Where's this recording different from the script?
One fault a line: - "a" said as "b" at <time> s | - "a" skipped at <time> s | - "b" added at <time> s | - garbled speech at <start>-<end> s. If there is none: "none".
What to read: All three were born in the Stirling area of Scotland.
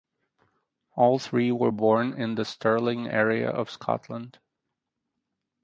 none